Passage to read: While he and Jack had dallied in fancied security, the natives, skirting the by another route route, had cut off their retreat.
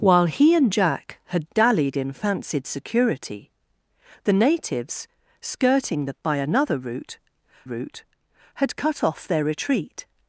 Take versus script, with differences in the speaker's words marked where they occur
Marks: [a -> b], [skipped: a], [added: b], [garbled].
While he and Jack had dallied in fancied security, the natives, skirting the by another route route, had cut off their retreat.